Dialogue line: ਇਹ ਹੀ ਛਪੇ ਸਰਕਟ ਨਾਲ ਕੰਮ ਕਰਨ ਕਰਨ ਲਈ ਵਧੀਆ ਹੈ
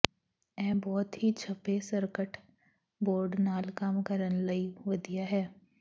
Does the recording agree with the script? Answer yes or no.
no